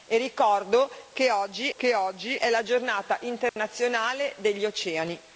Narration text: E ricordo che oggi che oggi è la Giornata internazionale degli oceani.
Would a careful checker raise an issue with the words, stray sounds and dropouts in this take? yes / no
yes